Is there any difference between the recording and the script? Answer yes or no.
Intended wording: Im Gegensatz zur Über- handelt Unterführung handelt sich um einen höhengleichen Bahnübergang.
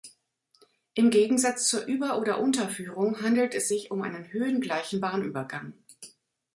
yes